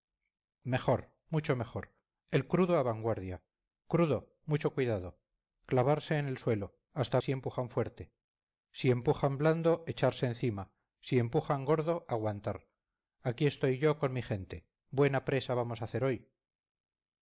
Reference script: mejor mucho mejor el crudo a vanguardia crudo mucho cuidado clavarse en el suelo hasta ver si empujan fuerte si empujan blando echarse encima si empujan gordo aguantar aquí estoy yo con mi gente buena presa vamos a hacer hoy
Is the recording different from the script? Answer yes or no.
yes